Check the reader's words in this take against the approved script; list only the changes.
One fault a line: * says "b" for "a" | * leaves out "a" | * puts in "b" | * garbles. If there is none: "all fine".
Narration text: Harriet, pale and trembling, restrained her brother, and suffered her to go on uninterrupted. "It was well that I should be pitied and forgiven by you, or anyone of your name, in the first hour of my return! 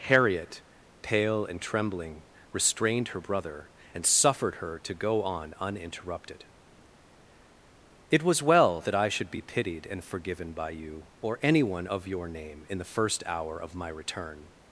all fine